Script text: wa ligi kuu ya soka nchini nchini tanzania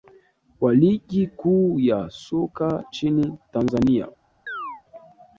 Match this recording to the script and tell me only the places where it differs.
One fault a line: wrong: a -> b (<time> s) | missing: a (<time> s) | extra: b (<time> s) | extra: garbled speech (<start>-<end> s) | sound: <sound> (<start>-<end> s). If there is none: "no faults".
missing: nchini (3.3 s)
sound: chirp (4.5-4.8 s)